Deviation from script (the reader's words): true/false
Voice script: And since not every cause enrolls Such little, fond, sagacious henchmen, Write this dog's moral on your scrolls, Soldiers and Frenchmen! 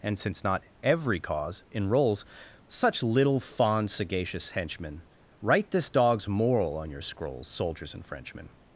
false